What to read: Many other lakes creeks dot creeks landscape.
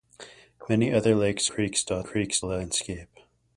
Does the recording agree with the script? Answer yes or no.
yes